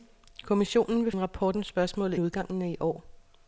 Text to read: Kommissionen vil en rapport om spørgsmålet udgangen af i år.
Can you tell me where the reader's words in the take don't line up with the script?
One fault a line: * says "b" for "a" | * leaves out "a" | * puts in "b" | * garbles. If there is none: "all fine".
all fine